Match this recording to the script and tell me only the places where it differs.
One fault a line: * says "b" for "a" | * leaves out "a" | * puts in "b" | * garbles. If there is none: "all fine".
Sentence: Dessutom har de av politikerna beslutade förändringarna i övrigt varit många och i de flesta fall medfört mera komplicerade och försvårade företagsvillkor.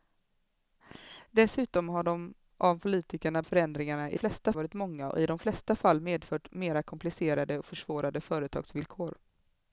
* leaves out "beslutade"
* says "flesta" for "övrigt"